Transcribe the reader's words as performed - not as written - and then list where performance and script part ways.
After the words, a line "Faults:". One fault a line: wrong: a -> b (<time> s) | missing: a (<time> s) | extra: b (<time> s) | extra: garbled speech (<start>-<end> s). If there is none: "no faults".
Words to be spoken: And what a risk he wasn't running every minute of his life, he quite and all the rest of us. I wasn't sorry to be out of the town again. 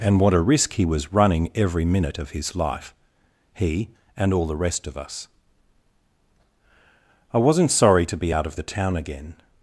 And what a risk he was running every minute of his life, he and all the rest of us. I wasn't sorry to be out of the town again.
Faults:
wrong: wasn't -> was (0.8 s)
missing: quite (3.9 s)